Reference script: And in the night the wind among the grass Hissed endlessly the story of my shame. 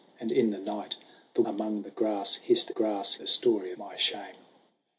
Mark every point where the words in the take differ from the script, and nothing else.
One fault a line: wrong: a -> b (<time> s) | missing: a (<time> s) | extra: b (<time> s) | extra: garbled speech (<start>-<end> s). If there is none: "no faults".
missing: wind (1.4 s)
wrong: endlessly -> grass (2.7 s)
missing: of (3.7 s)